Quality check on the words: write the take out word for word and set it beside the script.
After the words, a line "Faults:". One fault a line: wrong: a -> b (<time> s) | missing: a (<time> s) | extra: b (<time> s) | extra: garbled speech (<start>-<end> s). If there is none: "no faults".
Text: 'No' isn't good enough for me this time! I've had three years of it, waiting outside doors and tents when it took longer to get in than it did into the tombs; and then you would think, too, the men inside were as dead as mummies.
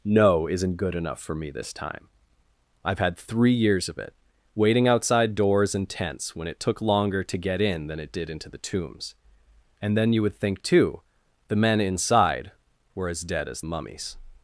'No' isn't good enough for me this time! I've had three years of it, waiting outside doors and tents when it took longer to get in than it did into the tombs; and then you would think, too, the men inside were as dead as mummies.
Faults:
no faults